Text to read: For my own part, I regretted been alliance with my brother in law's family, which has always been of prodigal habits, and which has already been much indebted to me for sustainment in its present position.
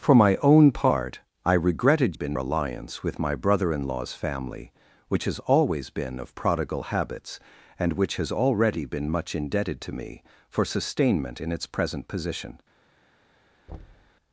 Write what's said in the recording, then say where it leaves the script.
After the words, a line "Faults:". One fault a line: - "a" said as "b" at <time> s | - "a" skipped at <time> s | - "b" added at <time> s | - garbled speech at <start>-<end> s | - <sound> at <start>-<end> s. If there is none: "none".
For my own part, I regretted been alliance with my brother in law's family, which has always been of prodigal habits, and which has already been much indebted to me for sustainment in its present position.
Faults:
- thud at 13.7-14.1 s